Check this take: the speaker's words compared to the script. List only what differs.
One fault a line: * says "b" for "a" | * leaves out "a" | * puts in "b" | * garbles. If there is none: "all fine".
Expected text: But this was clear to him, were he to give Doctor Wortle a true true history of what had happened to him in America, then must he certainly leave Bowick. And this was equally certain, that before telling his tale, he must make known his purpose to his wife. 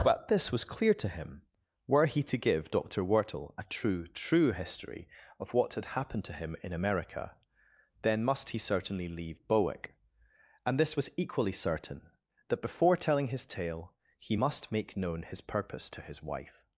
all fine